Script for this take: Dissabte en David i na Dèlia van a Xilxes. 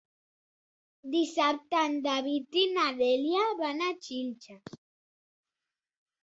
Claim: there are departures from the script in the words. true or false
false